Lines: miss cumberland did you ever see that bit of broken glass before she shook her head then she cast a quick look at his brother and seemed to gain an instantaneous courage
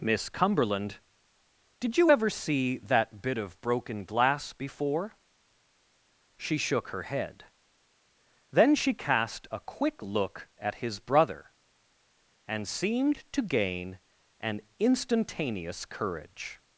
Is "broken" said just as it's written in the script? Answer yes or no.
yes